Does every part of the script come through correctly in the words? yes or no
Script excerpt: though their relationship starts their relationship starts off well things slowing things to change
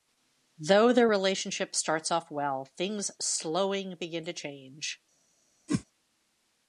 no